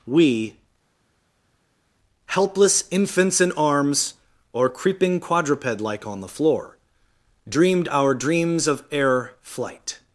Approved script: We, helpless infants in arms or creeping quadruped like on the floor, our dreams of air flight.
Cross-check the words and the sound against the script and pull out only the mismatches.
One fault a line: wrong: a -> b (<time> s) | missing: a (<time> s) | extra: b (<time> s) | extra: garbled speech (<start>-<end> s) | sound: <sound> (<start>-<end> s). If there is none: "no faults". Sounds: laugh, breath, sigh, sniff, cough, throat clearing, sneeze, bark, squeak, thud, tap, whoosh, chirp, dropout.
extra: dreamed (7.5 s)